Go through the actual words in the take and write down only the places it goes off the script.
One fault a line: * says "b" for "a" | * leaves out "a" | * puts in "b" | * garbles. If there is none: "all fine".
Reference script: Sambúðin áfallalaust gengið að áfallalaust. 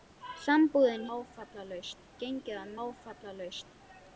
all fine